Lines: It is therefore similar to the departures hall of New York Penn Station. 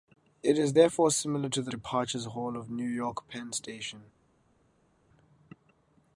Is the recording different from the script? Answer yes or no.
no